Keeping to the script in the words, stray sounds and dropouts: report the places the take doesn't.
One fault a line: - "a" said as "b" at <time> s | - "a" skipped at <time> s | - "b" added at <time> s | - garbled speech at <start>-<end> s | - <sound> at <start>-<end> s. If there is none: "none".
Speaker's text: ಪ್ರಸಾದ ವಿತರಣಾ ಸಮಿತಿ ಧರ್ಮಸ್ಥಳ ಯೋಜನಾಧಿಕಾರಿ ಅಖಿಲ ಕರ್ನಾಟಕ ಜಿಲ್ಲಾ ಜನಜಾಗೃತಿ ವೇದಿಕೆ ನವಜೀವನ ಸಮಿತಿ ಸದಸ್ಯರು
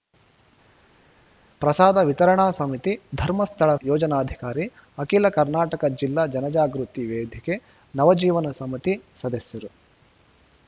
none